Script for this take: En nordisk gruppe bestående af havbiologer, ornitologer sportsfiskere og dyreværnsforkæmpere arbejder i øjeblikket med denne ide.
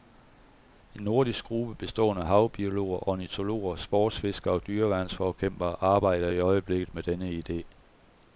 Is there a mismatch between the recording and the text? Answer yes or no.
no